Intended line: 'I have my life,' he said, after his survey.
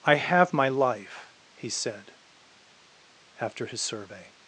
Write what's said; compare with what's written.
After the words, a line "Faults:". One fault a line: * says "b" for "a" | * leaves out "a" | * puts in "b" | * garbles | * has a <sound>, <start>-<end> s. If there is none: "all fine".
'I have my life,' he said, after his survey.
Faults:
all fine